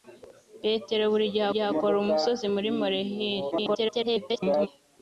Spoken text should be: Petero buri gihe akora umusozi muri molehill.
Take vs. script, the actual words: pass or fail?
fail